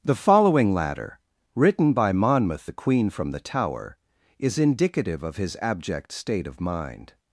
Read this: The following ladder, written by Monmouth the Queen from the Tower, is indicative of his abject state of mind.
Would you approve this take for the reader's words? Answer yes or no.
yes